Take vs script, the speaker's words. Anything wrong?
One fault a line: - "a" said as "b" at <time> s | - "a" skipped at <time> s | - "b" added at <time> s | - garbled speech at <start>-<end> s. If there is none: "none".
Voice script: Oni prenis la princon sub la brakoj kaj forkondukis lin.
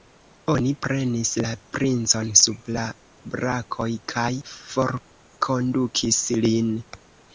none